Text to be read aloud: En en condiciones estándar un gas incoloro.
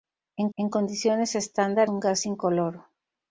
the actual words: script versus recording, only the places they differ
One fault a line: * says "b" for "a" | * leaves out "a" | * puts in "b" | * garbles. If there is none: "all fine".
all fine